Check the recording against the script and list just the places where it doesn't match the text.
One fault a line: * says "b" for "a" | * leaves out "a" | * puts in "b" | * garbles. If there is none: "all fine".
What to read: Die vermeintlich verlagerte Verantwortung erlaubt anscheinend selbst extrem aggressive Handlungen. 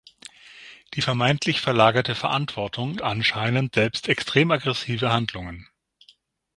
* leaves out "erlaubt"